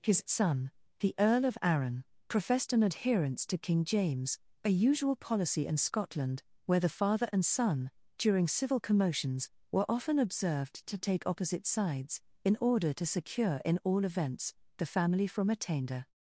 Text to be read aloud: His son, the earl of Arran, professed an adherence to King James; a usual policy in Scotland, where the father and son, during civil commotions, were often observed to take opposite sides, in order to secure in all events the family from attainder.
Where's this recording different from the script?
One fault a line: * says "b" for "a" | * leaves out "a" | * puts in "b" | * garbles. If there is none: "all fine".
all fine